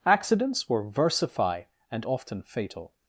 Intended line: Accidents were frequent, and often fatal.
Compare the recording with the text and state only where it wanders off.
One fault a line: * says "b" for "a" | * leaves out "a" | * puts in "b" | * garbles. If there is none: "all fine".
* says "versify" for "frequent"